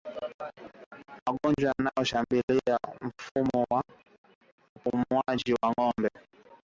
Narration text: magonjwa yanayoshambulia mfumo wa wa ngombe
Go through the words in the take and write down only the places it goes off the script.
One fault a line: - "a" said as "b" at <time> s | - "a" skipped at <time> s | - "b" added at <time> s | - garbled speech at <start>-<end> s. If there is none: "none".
- "upumuaji" added at 4.8 s